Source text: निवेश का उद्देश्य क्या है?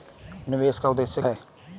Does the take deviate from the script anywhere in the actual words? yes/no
yes